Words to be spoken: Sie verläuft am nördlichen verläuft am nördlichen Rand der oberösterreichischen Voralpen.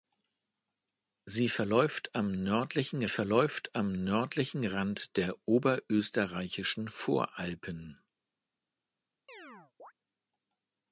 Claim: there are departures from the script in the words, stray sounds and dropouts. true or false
true